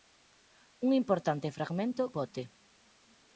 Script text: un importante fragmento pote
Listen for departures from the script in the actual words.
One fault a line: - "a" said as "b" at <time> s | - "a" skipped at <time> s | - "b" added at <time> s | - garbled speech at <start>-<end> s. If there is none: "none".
none